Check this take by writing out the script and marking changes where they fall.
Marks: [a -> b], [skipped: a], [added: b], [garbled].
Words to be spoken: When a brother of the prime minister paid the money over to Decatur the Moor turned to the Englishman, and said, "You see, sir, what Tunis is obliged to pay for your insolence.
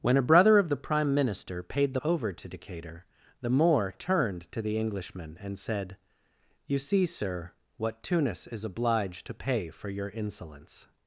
When a brother of the prime minister paid the [skipped: money] over to Decatur the Moor turned to the Englishman, and said, "You see, sir, what Tunis is obliged to pay for your insolence.